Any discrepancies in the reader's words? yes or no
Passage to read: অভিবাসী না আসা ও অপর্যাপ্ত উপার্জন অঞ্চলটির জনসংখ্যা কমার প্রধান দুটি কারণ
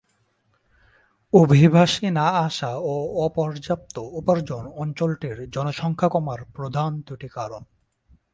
no